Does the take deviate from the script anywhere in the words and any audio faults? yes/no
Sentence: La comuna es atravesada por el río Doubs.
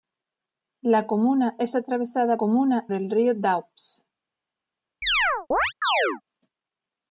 yes